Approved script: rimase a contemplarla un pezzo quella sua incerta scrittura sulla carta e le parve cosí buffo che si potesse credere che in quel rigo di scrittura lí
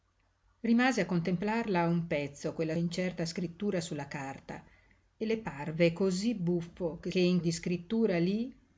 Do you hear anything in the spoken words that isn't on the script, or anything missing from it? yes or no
yes